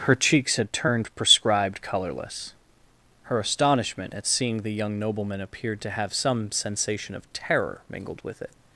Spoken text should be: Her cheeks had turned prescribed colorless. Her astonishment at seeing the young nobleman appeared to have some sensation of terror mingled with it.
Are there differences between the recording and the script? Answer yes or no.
no